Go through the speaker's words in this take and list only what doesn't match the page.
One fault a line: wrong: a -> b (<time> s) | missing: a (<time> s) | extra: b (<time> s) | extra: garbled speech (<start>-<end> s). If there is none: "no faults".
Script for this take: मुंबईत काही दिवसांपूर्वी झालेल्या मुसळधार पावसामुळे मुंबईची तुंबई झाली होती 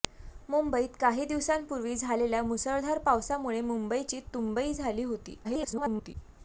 extra: garbled speech (5.4-6.1 s)